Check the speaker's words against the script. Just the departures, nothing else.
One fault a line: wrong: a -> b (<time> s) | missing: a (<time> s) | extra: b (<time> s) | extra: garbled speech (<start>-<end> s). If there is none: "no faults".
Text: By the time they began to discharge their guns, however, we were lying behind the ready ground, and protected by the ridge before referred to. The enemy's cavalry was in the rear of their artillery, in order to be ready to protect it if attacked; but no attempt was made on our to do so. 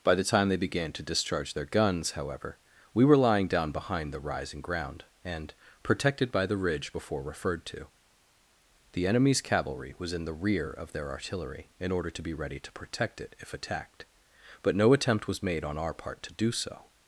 extra: down (3.5 s)
wrong: ready -> rising (4.2 s)
extra: part (15.9 s)